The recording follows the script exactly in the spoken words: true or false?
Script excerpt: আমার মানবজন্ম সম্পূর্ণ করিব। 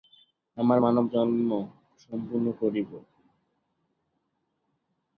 true